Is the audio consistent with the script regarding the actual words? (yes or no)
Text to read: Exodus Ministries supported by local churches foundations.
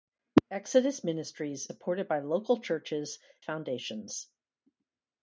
yes